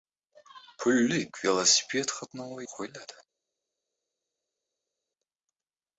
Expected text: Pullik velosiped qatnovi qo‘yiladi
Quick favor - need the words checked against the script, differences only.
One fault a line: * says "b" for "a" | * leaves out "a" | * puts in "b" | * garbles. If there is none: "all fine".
all fine